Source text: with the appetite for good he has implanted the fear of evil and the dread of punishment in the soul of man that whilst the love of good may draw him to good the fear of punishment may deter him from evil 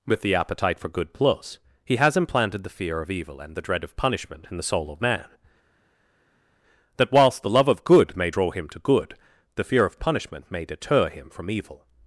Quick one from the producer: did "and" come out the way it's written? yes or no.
yes